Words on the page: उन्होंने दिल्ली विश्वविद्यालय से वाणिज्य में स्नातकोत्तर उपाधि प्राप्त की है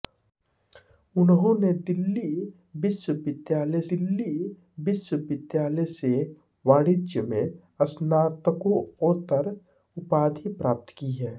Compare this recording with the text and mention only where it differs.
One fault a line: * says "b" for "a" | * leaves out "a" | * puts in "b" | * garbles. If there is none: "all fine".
* puts in "दिल्ली विश्वविद्यालय"